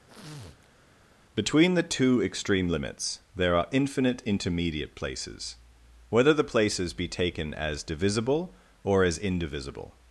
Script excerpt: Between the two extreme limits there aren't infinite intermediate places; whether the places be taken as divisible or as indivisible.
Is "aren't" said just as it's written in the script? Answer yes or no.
no